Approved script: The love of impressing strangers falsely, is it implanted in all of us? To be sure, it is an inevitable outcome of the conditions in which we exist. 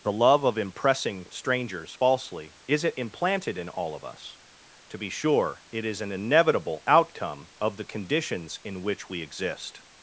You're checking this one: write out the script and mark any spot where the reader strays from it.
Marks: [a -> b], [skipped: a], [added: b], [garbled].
The love of impressing strangers falsely, is it implanted in all of us? To be sure, it is an inevitable outcome of the conditions in which we exist.